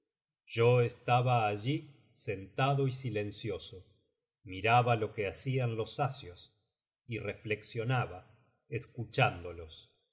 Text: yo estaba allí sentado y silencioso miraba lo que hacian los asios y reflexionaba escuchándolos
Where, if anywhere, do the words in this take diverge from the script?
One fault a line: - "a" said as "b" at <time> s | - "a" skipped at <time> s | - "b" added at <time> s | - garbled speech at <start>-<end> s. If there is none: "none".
none